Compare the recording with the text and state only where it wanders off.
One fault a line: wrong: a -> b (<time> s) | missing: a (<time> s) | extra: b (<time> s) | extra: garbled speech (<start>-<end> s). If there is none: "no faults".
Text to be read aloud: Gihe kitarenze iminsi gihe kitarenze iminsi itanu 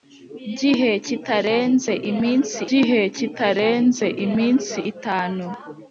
no faults